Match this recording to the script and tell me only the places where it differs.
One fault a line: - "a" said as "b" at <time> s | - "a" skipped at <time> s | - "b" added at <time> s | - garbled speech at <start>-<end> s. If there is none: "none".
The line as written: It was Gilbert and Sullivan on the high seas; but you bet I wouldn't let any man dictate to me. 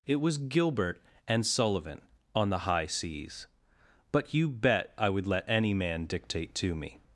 - "wouldn't" said as "would" at 5.1 s